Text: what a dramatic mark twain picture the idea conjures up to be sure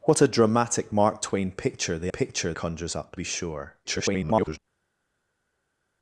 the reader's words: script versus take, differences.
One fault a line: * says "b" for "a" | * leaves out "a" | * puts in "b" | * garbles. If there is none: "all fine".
* says "picture" for "idea"
* leaves out "to"
* garbles